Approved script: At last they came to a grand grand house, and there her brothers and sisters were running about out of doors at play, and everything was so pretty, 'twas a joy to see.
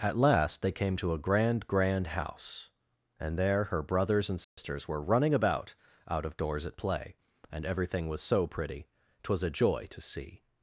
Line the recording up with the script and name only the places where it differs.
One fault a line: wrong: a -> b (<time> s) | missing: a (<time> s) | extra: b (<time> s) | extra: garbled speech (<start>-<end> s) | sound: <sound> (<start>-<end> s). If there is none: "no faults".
sound: dropout (4.4-4.6 s)